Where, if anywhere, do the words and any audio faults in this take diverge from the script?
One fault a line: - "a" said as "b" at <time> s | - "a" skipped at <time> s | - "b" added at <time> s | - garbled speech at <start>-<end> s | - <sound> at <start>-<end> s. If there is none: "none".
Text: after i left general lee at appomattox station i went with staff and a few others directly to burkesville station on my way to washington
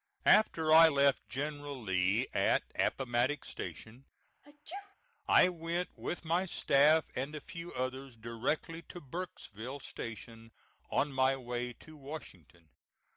- sneeze at 4.4-5.0 s
- "my" added at 6.2 s